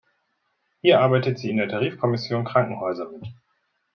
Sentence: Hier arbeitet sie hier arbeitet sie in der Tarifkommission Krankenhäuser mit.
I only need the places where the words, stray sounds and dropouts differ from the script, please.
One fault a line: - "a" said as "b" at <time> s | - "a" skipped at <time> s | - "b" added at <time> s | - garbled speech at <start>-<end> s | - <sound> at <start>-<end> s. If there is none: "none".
- "hier arbeitet sie" skipped at 1.5 s